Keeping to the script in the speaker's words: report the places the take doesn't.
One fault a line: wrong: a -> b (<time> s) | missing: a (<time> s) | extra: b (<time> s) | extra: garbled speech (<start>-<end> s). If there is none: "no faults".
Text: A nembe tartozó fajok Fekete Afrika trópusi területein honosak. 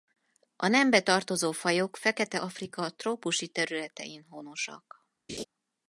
no faults